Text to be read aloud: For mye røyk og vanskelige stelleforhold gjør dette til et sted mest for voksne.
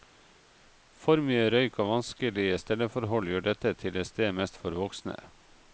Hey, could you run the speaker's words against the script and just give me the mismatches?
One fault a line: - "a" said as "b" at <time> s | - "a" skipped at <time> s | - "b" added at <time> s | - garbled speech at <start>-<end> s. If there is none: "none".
none